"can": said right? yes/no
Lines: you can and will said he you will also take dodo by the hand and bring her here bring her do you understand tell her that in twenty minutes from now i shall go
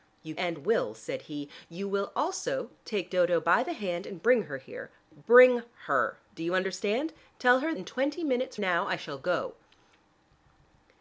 no